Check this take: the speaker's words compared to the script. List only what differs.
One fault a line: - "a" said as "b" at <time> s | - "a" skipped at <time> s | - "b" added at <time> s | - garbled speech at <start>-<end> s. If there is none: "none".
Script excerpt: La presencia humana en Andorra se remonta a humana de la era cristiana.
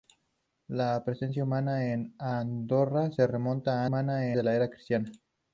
none